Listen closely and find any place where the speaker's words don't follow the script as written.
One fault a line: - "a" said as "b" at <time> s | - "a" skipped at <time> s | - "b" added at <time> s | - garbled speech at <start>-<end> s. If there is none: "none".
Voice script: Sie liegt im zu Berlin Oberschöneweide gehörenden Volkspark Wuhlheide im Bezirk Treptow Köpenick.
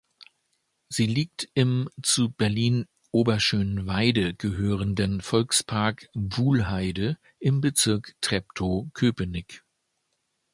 none